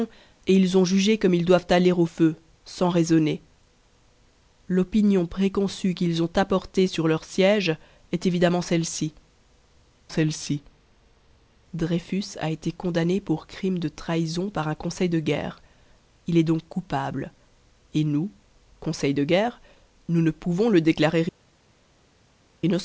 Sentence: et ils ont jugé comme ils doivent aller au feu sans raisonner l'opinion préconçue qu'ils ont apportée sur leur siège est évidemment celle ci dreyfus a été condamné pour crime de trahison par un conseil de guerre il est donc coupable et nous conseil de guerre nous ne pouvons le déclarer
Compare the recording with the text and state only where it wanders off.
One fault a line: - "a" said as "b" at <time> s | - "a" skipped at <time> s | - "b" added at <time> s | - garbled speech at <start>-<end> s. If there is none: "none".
- "celle ci" added at 10.1 s